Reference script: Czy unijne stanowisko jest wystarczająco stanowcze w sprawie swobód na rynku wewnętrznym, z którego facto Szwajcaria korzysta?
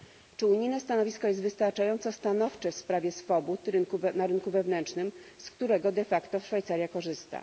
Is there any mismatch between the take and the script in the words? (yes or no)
yes